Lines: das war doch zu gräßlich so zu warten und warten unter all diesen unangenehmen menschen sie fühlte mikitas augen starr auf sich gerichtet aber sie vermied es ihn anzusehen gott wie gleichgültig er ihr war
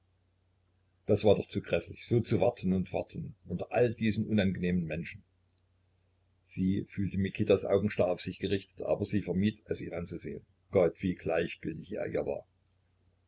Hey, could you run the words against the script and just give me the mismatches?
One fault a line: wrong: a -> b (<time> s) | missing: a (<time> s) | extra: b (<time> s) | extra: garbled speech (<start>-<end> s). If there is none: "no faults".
no faults